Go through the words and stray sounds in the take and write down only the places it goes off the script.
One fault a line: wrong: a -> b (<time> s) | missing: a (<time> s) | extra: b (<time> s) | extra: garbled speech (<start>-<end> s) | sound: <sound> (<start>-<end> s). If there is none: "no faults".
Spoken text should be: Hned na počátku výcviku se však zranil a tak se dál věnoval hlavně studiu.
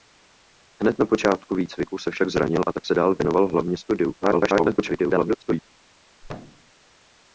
extra: garbled speech (4.2-5.6 s)
sound: thud (6.2-6.7 s)